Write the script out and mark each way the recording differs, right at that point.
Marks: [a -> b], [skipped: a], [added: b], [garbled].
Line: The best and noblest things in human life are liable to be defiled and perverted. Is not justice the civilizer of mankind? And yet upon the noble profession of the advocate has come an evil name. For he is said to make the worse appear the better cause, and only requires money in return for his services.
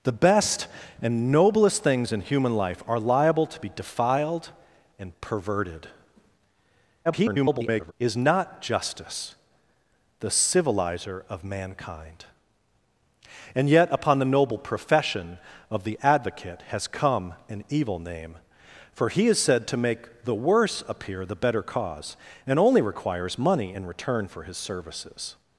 The best and noblest things in human life are liable to be defiled and perverted. [garbled] Is not justice the civilizer of mankind? And yet upon the noble profession of the advocate has come an evil name. For he is said to make the worse appear the better cause, and only requires money in return for his services.